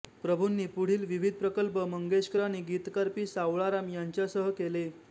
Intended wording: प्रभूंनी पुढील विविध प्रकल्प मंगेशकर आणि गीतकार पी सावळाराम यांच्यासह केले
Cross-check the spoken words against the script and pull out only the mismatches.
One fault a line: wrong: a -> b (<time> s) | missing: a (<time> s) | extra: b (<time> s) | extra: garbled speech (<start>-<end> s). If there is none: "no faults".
no faults